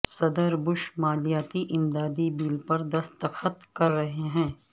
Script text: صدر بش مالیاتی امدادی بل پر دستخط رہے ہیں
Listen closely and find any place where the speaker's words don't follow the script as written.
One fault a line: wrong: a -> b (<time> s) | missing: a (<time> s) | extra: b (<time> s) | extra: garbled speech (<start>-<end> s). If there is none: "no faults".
extra: کر (3.7 s)